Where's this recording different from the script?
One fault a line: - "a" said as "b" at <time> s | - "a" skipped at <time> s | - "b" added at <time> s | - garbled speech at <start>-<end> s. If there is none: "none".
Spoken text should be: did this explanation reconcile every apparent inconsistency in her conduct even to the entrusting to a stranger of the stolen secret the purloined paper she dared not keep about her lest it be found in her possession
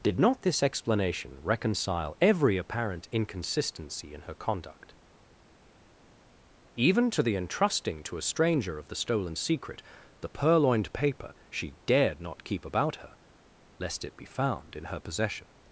- "not" added at 0.2 s